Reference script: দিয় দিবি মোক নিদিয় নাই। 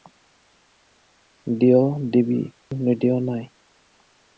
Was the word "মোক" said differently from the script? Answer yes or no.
yes